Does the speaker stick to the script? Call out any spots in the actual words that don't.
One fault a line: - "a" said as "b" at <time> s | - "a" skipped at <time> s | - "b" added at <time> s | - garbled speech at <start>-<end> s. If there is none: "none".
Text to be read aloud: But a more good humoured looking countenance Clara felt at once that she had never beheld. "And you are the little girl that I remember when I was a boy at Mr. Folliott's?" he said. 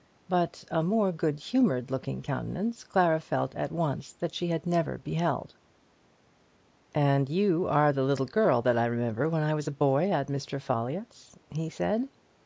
none